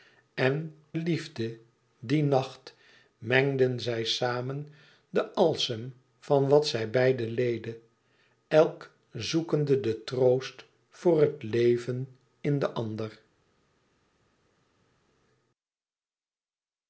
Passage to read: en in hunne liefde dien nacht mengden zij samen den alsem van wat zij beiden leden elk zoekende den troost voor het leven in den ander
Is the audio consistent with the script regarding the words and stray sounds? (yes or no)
no